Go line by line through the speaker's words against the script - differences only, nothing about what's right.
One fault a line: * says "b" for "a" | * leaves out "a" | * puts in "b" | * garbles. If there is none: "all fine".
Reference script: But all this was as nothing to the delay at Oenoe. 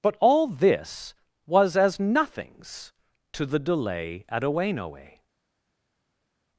* says "nothings" for "nothing"